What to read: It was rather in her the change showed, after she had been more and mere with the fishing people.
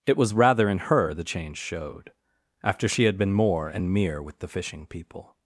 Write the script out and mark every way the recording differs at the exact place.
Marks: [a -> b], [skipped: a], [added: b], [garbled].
It was rather in her the change showed, after she had been more and mere with the fishing people.